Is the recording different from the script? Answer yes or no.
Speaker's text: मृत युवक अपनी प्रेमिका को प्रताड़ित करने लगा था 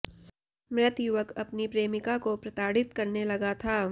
no